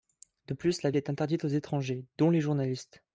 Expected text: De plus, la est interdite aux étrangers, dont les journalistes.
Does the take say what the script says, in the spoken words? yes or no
yes